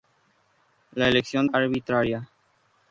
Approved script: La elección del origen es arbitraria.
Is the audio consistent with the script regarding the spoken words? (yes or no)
no